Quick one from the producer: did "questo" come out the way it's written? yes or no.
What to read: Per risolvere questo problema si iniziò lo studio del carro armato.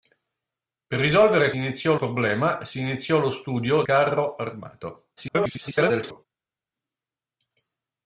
no